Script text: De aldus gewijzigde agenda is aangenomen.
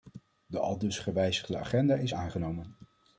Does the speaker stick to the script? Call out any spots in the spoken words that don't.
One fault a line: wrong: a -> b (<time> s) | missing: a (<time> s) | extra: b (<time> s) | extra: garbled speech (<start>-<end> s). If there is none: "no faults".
no faults